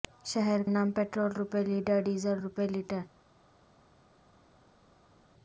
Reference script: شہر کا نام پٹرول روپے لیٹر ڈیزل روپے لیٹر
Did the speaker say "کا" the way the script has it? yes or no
no